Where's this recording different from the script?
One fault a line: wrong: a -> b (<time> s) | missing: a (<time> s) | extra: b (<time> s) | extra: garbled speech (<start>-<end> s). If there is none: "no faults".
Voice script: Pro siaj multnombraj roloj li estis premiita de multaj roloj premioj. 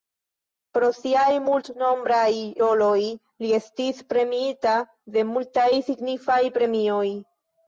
wrong: roloj -> signifaj (5.9 s)